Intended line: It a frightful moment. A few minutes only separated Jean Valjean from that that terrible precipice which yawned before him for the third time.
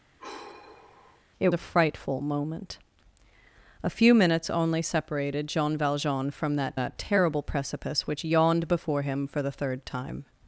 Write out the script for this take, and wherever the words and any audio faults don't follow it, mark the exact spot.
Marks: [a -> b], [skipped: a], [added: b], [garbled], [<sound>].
[sigh] It a frightful moment. A few minutes only separated Jean Valjean from that that terrible precipice which yawned before him for the third time.